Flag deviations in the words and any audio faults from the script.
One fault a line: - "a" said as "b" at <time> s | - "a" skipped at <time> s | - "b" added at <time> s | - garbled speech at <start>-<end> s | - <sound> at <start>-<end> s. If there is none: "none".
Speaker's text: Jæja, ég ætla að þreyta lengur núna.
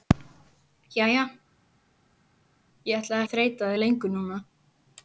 none